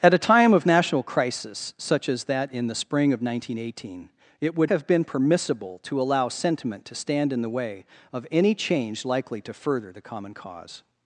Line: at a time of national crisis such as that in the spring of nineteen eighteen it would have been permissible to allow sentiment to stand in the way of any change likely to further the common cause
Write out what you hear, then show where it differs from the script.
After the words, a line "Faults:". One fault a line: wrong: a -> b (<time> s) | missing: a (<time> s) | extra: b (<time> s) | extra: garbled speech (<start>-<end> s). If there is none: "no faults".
at a time of national crisis such as that in the spring of nineteen eighteen it would have been permissible to allow sentiment to stand in the way of any change likely to further the common cause
Faults:
no faults